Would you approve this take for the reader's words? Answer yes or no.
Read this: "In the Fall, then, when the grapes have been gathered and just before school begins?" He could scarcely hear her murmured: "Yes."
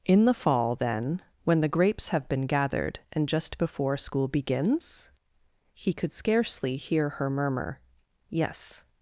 no